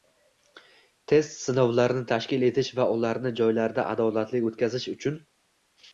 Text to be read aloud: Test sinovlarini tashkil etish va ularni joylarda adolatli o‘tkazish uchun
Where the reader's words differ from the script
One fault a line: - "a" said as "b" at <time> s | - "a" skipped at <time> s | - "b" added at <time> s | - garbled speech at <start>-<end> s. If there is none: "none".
none